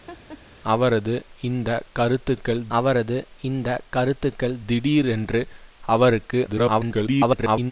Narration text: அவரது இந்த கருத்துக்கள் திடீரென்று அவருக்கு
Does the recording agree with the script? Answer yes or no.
no